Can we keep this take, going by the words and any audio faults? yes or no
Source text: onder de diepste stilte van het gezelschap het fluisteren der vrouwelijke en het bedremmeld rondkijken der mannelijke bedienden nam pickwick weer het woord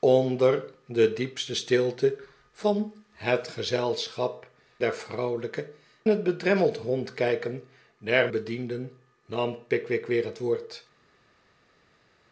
no